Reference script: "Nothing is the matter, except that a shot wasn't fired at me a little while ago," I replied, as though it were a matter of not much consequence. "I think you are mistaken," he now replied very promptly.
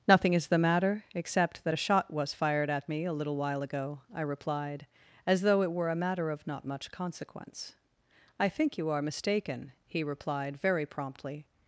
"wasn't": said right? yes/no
no